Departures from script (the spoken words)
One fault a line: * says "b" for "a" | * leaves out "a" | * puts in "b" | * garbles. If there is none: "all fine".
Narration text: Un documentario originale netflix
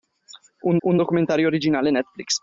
* puts in "un"